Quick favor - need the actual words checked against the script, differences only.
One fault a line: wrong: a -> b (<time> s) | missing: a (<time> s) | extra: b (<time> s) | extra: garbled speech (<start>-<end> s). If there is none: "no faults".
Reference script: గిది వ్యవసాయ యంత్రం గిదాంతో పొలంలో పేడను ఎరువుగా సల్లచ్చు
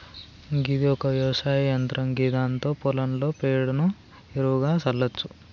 extra: ఒక (0.9 s)